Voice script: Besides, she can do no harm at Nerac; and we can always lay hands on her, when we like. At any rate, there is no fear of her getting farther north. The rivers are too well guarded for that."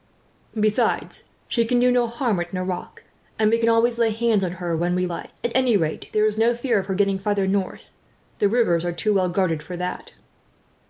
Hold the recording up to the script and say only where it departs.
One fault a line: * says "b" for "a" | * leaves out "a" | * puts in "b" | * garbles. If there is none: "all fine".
all fine